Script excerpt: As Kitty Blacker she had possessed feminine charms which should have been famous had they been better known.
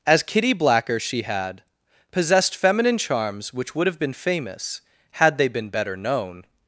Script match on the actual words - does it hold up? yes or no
no